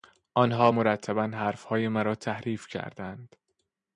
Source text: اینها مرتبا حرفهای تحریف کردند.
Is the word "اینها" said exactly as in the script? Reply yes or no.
no